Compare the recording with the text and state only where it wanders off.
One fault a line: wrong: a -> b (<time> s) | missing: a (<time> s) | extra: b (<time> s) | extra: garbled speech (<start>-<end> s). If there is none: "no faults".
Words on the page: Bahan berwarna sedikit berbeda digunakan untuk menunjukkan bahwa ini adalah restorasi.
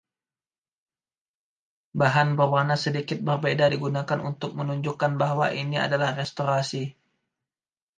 no faults